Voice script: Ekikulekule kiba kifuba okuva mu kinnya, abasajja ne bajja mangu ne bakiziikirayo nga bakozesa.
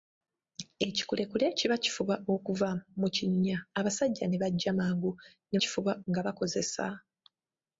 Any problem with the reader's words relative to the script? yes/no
yes